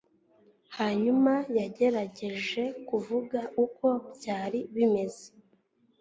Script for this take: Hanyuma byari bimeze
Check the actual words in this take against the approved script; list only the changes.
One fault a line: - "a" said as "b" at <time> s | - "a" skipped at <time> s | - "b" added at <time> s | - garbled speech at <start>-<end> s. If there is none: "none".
- "yagerageje kuvuga uko" added at 1.6 s